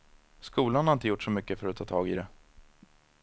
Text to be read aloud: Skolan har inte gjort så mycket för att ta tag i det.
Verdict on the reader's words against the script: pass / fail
pass